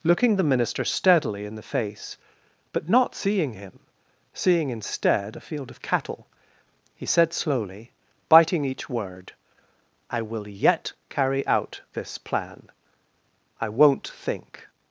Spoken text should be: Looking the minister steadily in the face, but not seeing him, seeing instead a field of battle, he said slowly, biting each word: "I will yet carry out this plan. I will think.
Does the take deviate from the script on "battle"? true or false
true